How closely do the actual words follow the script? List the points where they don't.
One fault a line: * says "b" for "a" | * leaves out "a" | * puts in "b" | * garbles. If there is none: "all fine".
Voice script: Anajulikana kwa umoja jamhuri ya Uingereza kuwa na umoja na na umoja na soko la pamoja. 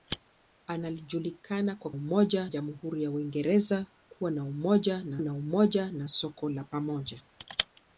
all fine